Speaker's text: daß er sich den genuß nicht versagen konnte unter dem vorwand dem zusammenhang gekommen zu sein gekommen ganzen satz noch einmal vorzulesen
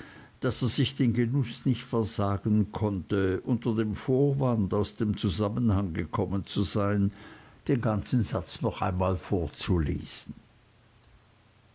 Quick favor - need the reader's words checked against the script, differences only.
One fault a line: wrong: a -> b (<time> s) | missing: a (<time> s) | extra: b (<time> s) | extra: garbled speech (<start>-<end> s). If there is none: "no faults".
extra: aus (4.7 s)
wrong: gekommen -> den (7.7 s)